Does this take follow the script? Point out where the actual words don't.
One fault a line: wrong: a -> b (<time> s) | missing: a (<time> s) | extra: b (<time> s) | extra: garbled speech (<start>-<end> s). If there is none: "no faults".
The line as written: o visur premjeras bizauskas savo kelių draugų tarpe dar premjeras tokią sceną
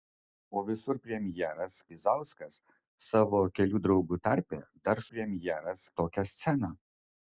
no faults